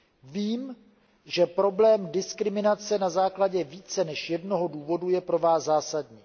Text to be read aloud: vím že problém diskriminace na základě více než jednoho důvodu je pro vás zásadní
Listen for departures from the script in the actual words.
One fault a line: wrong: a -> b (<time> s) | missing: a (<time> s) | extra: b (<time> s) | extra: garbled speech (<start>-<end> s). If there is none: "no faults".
no faults